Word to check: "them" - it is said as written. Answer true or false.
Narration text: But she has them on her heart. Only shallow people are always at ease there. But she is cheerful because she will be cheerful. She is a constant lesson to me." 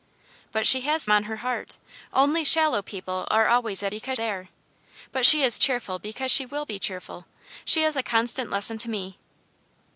false